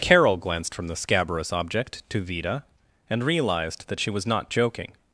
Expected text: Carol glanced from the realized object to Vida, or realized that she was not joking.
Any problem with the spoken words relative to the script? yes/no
yes